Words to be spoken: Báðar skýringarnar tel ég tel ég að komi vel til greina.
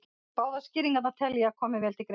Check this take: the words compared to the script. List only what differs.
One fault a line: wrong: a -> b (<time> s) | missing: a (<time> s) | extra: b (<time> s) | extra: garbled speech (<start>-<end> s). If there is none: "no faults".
missing: tel ég (1.5 s)